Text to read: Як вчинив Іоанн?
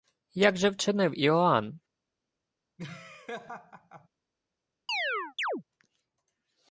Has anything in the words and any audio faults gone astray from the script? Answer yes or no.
yes